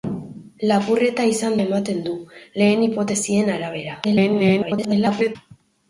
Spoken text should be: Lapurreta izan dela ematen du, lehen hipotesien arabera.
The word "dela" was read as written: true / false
false